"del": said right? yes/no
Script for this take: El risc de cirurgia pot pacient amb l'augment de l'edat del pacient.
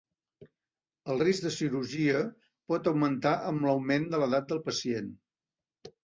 yes